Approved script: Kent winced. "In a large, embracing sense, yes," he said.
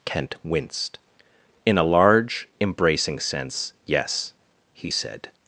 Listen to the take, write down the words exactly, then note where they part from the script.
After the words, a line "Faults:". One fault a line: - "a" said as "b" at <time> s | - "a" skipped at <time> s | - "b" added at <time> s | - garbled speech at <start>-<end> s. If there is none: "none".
Kent winced. "In a large, embracing sense, yes," he said.
Faults:
none